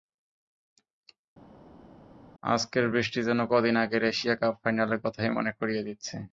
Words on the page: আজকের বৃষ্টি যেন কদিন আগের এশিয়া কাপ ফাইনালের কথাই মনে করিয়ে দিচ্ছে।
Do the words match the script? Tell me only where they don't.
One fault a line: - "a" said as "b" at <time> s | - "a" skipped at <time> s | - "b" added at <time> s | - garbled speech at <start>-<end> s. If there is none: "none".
none